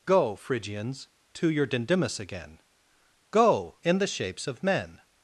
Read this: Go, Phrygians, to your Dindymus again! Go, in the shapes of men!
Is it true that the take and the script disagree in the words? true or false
false